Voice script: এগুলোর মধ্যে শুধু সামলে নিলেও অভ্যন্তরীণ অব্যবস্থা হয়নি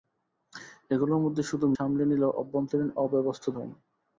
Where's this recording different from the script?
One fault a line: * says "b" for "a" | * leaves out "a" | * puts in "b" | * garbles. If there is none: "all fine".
all fine